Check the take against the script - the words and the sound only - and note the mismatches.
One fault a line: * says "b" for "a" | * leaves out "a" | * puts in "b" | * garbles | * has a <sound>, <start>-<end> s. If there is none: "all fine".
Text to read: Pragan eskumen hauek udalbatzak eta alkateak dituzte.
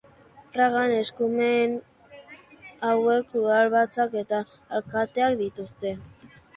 all fine